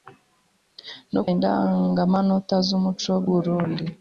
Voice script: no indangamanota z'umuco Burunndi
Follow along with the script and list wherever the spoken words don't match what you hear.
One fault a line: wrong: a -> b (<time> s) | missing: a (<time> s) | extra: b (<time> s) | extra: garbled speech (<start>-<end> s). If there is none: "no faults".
no faults